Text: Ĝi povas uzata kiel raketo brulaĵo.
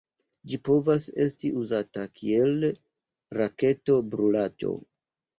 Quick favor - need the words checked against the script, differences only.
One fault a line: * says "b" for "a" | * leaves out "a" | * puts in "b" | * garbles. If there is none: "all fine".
* puts in "esti"